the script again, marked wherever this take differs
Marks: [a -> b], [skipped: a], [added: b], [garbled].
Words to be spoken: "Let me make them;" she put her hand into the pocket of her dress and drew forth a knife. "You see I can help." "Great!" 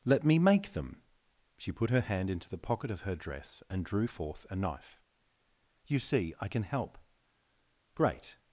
"Let me make them;" she put her hand into the pocket of her dress and drew forth a knife. "You see I can help." "Great!"